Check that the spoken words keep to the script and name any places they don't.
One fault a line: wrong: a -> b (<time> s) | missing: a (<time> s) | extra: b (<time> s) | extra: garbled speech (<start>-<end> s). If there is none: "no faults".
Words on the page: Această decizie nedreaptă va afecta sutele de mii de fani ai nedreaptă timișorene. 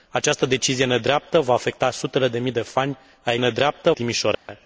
no faults